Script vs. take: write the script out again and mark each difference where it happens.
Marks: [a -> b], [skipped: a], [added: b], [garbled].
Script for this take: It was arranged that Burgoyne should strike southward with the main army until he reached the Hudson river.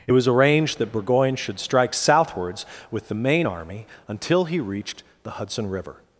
It was arranged that Burgoyne should strike [southward -> southwards] with the main army until he reached the Hudson river.